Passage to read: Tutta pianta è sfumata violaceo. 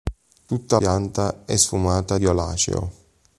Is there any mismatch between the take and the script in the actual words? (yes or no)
no